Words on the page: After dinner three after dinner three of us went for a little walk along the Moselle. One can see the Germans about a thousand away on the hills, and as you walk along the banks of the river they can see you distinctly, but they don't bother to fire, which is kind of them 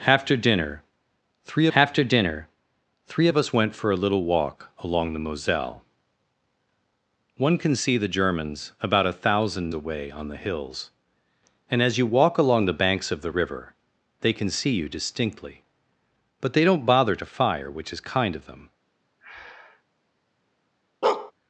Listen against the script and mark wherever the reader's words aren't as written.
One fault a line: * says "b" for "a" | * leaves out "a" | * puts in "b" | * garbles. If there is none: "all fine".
all fine